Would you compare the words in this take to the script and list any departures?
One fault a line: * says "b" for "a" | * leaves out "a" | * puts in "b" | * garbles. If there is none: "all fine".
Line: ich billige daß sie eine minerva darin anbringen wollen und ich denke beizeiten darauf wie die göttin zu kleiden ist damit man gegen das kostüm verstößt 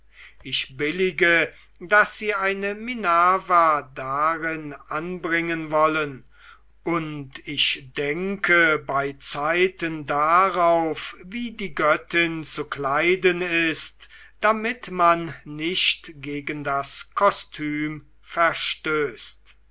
* puts in "nicht"